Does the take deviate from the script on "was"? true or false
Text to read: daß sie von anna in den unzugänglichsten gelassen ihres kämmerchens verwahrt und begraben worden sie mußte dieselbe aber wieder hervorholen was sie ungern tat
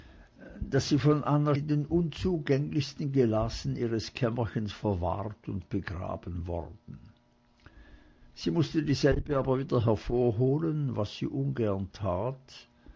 false